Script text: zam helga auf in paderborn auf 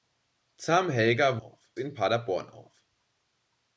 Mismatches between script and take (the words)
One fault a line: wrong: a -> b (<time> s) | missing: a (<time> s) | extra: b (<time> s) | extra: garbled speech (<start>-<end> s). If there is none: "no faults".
no faults